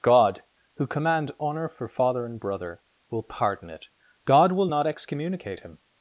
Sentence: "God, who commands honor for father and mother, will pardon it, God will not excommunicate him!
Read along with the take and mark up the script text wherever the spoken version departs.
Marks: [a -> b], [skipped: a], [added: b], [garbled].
"God, who [commands -> command] honor for father and [mother, -> brother] will pardon it, God will not excommunicate him!